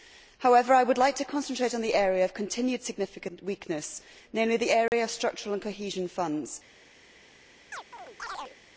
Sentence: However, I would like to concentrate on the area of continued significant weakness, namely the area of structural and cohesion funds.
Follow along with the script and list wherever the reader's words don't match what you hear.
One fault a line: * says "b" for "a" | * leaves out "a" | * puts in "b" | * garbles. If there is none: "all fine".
all fine